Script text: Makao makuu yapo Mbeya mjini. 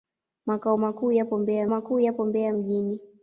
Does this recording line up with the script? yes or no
no